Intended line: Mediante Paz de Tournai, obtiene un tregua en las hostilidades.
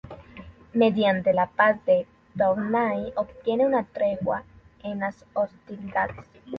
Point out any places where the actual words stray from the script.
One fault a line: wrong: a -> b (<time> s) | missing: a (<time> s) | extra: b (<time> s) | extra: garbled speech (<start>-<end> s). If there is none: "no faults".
extra: la (1.3 s)
wrong: un -> una (3.6 s)